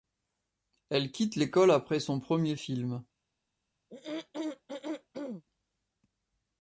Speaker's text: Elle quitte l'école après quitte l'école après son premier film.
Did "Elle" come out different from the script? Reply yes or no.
no